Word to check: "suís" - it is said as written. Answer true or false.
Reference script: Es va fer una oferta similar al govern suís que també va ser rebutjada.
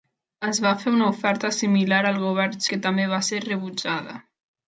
false